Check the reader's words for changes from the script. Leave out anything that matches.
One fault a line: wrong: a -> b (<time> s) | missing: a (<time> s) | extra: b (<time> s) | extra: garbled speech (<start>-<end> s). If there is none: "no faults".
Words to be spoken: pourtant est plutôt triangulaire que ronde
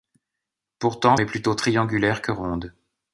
no faults